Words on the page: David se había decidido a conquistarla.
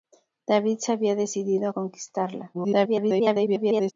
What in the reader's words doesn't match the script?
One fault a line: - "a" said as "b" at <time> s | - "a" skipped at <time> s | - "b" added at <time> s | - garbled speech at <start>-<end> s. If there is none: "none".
- garbled speech at 2.5-3.9 s